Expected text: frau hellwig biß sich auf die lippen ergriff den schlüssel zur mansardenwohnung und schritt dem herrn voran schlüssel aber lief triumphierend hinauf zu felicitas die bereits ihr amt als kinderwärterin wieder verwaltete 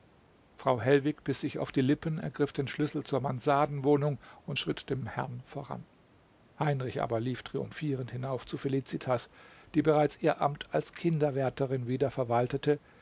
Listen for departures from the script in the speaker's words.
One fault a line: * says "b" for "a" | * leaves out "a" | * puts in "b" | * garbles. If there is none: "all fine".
* says "heinrich" for "schlüssel"